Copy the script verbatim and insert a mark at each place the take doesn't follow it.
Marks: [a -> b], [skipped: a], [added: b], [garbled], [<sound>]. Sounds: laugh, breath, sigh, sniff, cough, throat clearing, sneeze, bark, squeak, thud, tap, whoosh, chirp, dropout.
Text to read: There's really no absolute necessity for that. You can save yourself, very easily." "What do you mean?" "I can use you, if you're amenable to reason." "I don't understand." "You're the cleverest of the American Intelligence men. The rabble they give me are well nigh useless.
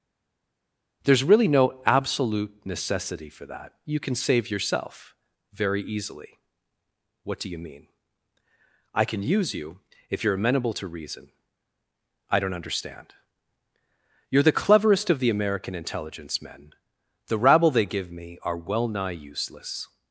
There's really no absolute necessity for that. You can save yourself, very easily." "What do you mean?" "I can use you, if you're amenable to reason." "I don't understand." "You're the cleverest of the American Intelligence men. The rabble they give me are well nigh useless.